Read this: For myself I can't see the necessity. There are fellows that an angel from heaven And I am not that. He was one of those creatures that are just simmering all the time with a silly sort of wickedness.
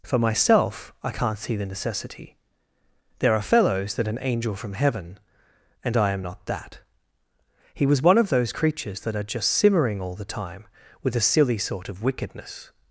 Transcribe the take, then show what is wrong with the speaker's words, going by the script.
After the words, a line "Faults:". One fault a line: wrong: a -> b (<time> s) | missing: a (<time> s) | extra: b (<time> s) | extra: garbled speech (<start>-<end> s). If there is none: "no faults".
For myself I can't see the necessity. There are fellows that an angel from heaven And I am not that. He was one of those creatures that are just simmering all the time with a silly sort of wickedness.
Faults:
no faults